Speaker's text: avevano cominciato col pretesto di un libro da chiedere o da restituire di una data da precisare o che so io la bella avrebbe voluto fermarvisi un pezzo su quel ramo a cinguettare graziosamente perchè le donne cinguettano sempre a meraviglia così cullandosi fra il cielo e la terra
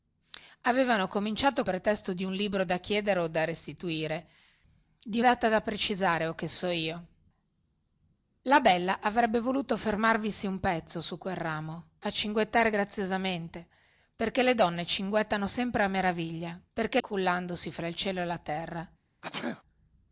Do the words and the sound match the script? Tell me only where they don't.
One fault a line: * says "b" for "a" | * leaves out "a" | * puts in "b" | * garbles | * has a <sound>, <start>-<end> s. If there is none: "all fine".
* leaves out "col"
* leaves out "una"
* says "perchè" for "così"
* has a sneeze, 19.2-19.6 s